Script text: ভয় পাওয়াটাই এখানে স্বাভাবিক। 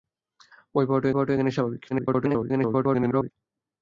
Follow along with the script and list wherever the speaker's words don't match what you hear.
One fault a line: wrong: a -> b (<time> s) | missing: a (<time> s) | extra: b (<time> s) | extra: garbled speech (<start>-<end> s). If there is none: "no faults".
extra: পাওয়াটাই (1.1 s)
extra: garbled speech (1.9-3.3 s)